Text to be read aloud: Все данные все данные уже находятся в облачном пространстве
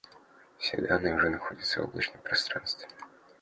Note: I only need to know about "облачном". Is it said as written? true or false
true